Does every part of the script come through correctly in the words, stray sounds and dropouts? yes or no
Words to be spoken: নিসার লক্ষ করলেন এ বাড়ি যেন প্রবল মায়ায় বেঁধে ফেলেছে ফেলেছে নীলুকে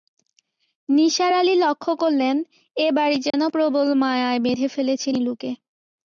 no